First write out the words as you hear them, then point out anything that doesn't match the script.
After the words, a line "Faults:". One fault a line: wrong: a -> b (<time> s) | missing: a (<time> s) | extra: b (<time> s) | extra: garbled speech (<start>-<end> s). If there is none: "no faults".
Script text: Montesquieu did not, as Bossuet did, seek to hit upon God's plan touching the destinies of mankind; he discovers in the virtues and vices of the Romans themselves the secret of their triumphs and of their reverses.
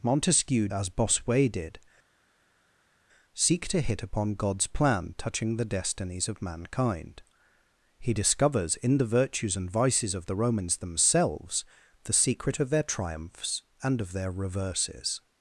Montesquieu as Bossuet did, seek to hit upon God's plan touching the destinies of mankind; he discovers in the virtues and vices of the Romans themselves the secret of their triumphs and of their reverses.
Faults:
missing: did not (0.7 s)